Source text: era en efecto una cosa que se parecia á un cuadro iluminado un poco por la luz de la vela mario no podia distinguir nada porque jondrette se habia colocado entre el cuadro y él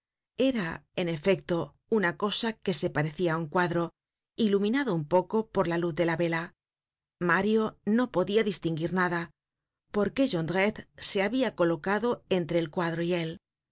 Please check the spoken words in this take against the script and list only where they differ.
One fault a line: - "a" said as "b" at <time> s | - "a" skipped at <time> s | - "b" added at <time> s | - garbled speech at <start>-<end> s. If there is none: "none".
none